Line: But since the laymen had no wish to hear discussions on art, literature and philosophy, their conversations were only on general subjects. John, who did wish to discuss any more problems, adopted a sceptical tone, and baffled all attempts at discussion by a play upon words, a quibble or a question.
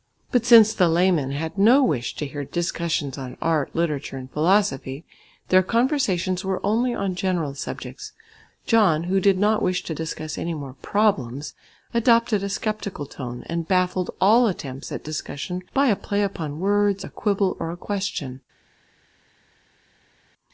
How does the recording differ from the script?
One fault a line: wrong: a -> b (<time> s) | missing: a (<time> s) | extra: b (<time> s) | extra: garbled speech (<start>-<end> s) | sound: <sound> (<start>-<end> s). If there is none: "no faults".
extra: not (9.4 s)